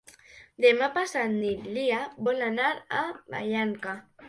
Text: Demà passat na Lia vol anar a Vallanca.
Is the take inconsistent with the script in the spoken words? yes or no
no